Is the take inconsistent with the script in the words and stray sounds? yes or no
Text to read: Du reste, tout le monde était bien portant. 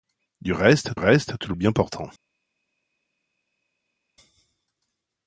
yes